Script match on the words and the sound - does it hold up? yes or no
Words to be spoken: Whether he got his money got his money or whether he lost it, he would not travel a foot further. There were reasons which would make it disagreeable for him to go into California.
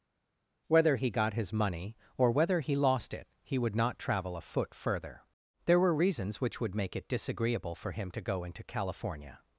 no